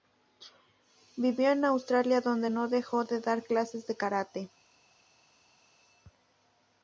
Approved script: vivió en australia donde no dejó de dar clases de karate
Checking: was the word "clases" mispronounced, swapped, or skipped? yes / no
no